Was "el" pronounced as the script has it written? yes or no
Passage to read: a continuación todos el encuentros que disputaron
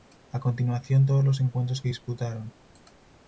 no